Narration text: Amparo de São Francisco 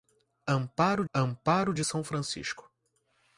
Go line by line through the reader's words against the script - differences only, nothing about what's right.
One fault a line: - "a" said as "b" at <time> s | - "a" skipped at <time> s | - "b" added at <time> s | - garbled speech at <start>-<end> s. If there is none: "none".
- "amparo" added at 1.1 s